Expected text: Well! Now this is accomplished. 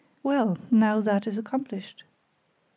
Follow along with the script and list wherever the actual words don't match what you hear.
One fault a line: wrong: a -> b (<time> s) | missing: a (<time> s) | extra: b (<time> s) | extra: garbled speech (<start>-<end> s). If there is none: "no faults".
wrong: this -> that (1.0 s)